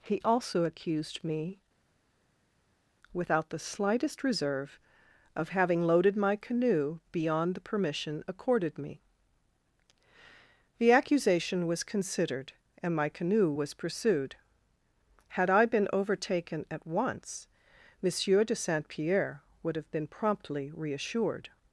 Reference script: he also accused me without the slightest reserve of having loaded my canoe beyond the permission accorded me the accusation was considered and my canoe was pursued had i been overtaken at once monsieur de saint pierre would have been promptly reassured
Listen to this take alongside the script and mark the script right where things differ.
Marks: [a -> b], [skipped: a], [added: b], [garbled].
he also accused me without the slightest reserve of having loaded my canoe beyond the permission accorded me the accusation was considered and my canoe was pursued had i been overtaken at once monsieur de saint pierre would have been promptly reassured